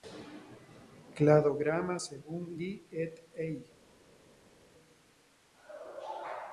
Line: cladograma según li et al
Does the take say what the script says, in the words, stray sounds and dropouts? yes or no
yes